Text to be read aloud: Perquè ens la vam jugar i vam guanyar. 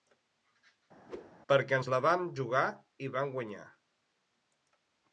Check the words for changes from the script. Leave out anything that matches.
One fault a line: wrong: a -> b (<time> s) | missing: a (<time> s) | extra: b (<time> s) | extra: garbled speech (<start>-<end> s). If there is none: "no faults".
no faults